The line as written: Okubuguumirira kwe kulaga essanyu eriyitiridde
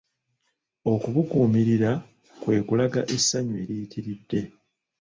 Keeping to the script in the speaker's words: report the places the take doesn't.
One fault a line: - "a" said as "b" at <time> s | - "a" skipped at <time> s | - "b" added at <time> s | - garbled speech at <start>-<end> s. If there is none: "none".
none